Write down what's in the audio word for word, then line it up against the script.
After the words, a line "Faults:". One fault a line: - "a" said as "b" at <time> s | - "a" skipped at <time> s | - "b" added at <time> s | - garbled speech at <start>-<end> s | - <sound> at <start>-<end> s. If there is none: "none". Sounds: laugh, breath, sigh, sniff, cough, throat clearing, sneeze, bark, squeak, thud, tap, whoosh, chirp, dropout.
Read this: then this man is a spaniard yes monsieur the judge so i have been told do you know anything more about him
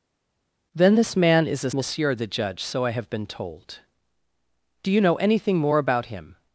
then this man is a monsieur the judge so i have been told do you know anything more about him
Faults:
- "spaniard yes" skipped at 1.7 s